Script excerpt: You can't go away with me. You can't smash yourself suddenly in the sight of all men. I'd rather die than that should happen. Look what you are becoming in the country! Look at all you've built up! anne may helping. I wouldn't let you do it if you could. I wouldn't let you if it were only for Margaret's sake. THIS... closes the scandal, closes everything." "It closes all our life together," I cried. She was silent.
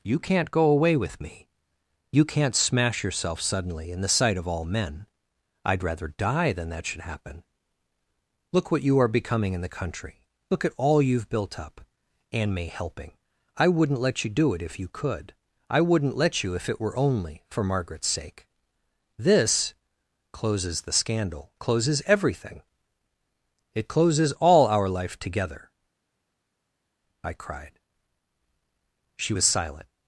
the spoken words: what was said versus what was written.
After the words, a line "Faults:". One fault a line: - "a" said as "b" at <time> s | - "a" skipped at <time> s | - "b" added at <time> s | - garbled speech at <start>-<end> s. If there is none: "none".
You can't go away with me. You can't smash yourself suddenly in the sight of all men. I'd rather die than that should happen. Look what you are becoming in the country! Look at all you've built up! anne may helping. I wouldn't let you do it if you could. I wouldn't let you if it were only for Margaret's sake. THIS... closes the scandal, closes everything." "It closes all our life together," I cried. She was silent.
Faults:
none